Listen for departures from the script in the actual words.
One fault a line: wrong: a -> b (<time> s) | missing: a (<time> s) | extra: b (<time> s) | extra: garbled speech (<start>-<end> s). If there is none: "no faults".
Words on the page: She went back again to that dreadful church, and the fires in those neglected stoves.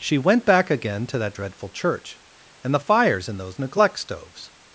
wrong: neglected -> neglect (3.6 s)